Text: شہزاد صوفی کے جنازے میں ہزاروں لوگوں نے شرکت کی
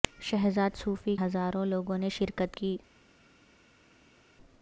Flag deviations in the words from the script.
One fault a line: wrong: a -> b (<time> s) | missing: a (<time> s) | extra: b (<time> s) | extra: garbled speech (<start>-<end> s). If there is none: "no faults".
missing: کے جنازے میں (1.1 s)